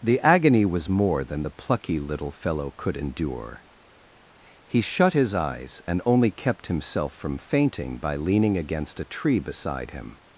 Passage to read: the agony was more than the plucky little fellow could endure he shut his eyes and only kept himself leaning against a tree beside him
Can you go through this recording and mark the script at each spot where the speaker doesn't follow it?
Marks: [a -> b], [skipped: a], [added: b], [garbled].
the agony was more than the plucky little fellow could endure he shut his eyes and only kept himself [added: from fainting by] leaning against a tree beside him